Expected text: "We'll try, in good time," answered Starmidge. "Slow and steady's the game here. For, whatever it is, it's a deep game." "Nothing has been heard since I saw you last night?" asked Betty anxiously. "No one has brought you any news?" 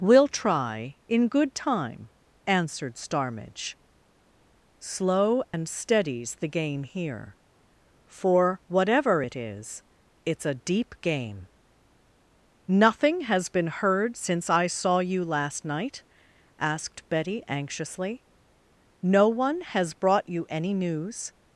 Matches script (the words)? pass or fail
pass